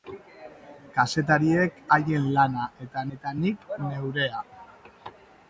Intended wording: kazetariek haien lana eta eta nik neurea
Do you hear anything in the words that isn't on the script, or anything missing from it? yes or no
no